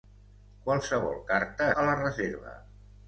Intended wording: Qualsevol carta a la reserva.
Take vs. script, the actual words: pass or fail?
pass